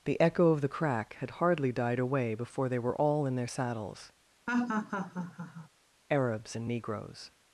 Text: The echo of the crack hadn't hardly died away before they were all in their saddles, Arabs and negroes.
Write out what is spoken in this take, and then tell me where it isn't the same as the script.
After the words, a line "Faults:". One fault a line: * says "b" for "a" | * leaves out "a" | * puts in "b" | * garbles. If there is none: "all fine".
The echo of the crack had hardly died away before they were all in their saddles, Arabs and negroes.
Faults:
* says "had" for "hadn't"